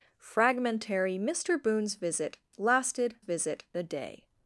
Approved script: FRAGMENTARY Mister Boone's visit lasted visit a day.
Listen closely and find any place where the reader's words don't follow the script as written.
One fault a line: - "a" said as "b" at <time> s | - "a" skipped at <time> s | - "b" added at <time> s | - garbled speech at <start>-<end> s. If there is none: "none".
none